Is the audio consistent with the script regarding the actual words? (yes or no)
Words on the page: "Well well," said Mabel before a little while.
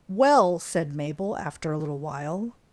no